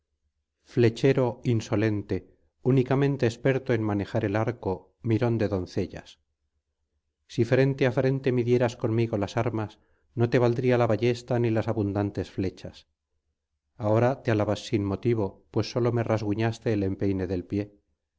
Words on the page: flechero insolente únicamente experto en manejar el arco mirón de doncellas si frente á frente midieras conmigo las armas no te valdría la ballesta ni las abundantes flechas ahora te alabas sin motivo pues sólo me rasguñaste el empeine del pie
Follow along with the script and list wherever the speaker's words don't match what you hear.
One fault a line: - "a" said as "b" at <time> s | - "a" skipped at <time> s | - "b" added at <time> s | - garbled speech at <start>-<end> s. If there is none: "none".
none